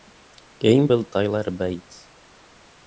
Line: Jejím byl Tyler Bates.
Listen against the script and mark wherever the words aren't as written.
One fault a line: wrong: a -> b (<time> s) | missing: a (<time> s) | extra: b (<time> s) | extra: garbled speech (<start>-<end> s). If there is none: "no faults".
no faults